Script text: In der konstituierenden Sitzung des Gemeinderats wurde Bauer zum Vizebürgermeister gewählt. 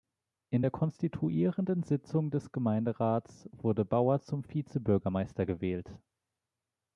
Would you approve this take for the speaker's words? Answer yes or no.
yes